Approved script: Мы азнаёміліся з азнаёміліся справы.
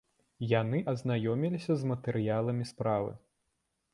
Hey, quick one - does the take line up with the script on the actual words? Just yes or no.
no